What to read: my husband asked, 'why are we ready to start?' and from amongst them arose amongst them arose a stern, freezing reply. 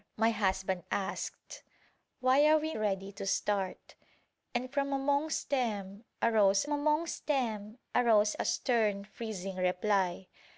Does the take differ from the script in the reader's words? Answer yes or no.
no